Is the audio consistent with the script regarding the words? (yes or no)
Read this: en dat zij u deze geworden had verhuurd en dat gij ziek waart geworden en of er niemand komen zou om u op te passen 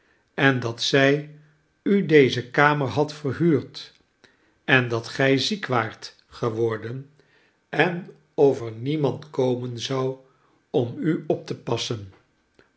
no